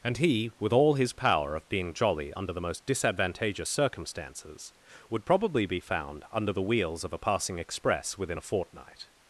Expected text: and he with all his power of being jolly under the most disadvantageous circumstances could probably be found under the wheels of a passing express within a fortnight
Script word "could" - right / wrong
wrong